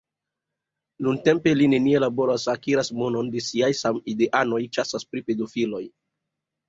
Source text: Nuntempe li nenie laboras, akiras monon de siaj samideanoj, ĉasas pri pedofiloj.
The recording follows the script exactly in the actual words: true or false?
true